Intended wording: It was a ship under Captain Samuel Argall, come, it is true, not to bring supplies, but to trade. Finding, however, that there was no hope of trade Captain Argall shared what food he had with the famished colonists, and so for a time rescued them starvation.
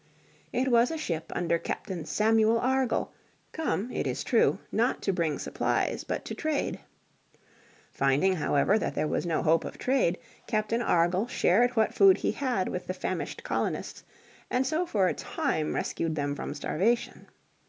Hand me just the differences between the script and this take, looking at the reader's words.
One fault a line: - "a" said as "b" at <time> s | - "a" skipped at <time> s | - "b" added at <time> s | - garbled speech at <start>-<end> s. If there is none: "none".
- "from" added at 16.3 s